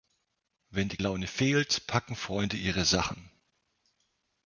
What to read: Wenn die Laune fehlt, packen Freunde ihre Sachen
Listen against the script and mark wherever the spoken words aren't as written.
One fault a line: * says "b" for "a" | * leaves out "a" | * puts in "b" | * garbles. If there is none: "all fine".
all fine